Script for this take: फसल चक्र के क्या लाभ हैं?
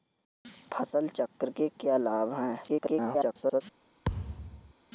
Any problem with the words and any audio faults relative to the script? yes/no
yes